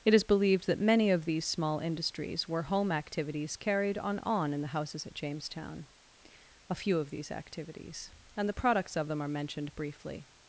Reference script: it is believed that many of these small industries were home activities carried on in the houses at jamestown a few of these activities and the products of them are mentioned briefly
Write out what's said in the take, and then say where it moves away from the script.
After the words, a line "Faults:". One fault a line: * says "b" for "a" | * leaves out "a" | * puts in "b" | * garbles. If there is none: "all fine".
it is believed that many of these small industries were home activities carried on on in the houses at jamestown a few of these activities and the products of them are mentioned briefly
Faults:
* puts in "on"